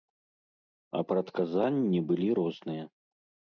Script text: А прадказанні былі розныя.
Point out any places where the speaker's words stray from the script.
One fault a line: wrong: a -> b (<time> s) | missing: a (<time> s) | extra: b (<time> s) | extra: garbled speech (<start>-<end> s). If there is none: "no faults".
no faults